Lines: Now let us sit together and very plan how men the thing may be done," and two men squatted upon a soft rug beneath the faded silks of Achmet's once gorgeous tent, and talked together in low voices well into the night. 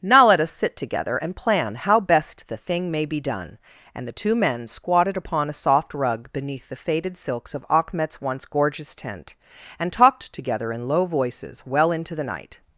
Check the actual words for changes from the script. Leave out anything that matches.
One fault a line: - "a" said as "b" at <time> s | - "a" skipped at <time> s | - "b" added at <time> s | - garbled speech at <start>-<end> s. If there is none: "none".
- "very" skipped at 1.3 s
- "men" said as "best" at 2.0 s
- "the" added at 4.1 s